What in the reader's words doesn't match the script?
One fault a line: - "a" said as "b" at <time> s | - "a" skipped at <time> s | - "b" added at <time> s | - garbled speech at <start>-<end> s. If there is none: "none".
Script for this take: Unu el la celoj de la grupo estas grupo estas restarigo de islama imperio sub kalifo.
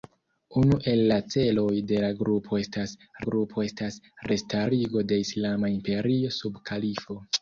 none